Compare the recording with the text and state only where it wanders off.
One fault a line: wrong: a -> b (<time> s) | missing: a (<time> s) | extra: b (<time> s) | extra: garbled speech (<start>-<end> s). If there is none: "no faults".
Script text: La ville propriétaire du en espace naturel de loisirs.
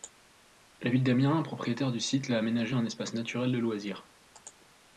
extra: d'Amiens (1.0 s)
extra: site l'a aménagé (2.0 s)